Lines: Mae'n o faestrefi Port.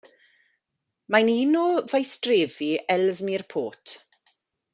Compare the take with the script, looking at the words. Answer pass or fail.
fail